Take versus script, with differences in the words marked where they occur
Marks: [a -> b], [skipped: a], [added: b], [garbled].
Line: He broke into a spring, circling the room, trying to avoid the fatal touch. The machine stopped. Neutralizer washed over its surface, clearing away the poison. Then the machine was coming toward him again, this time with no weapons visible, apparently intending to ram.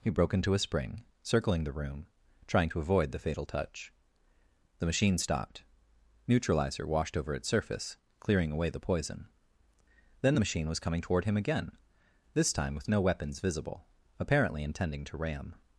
He broke into a spring, circling the room, trying to avoid the fatal touch. The machine stopped. Neutralizer washed over its surface, clearing away the poison. Then the machine was coming toward him again, this time with no weapons visible, apparently intending to ram.